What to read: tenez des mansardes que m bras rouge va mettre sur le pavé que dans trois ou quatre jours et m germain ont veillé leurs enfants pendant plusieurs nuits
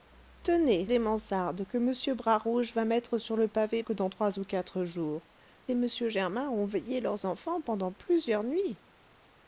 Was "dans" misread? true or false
false